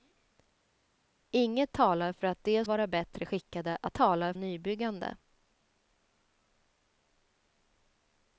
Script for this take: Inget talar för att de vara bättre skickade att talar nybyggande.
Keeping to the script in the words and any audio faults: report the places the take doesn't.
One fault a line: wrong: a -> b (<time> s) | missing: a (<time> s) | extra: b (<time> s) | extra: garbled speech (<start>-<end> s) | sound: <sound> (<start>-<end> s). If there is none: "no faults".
no faults